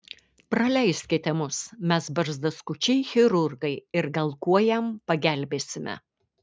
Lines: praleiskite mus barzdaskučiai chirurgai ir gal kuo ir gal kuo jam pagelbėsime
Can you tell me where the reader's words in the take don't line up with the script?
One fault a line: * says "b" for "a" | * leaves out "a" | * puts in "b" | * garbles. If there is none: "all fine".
* puts in "mes"
* leaves out "ir gal kuo"